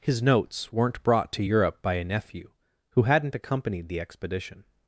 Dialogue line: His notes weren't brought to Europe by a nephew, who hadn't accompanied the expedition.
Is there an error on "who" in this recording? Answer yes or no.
no